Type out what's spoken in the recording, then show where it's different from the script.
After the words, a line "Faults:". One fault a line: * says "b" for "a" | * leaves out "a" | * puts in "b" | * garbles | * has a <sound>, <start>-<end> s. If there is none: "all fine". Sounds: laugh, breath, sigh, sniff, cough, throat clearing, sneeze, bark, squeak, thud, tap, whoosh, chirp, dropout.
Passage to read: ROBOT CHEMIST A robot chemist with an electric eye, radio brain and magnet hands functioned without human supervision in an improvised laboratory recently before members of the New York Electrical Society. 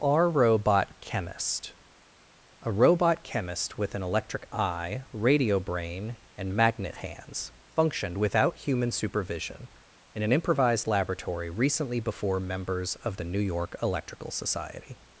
our ROBOT CHEMIST A robot chemist with an electric eye, radio brain and magnet hands functioned without human supervision in an improvised laboratory recently before members of the New York Electrical Society.
Faults:
* puts in "our"